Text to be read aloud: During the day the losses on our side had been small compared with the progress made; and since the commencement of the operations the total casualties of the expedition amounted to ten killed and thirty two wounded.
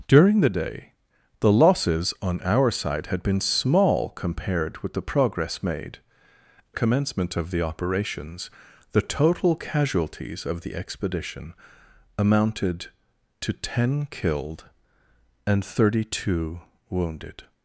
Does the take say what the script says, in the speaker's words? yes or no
no